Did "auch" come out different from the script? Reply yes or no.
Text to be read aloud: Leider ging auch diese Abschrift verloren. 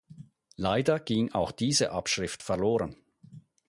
no